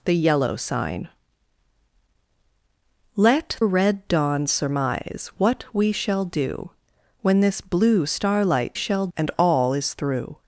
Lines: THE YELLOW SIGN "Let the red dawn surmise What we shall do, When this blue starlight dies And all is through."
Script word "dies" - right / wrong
wrong